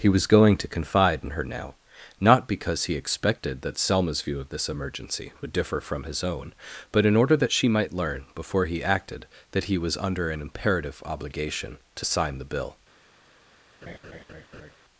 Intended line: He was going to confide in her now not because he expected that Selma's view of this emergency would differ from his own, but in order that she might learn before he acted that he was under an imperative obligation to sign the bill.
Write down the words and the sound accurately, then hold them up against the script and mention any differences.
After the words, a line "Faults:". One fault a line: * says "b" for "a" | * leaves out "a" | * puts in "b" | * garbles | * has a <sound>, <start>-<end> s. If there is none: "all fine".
He was going to confide in her now not because he expected that Selma's view of this emergency would differ from his own, but in order that she might learn before he acted that he was under an imperative obligation to sign the bill.
Faults:
* has a laugh, 13.8-14.7 s